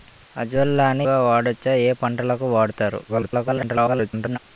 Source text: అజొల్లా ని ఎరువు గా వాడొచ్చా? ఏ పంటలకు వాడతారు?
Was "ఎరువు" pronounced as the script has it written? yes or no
no